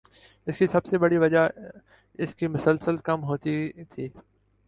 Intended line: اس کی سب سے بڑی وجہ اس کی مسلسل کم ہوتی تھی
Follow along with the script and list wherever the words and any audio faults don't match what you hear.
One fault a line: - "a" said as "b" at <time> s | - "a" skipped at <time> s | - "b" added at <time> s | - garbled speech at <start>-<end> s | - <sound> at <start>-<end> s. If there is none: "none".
none